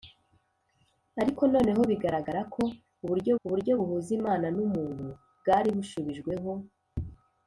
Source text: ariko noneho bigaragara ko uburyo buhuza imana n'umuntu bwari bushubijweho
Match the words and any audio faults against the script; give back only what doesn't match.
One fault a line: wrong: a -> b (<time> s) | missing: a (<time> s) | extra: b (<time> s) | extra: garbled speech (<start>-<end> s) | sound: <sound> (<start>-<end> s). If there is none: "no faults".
extra: uburyo (3.4 s)